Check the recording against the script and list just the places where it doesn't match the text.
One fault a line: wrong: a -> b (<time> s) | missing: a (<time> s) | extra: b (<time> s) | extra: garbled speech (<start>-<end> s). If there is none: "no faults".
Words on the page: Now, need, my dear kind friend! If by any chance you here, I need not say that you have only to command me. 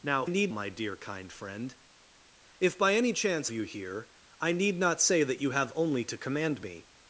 no faults